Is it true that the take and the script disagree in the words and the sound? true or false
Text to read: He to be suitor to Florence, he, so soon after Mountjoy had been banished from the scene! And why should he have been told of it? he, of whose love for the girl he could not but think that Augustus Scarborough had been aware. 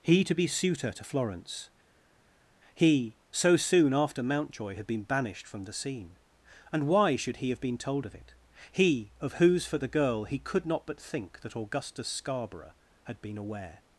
true